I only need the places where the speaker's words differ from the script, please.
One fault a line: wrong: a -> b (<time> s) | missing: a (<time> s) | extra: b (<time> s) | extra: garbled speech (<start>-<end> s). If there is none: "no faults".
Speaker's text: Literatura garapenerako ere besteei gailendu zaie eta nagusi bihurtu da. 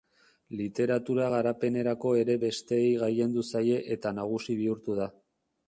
no faults